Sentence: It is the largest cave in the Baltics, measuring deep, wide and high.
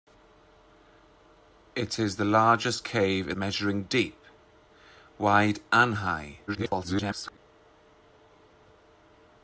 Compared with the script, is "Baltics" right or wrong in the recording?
wrong